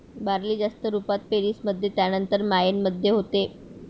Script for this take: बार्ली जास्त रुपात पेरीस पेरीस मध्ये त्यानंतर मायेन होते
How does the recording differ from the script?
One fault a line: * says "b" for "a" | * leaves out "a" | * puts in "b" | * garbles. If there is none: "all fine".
* leaves out "पेरीस"
* puts in "मध्ये"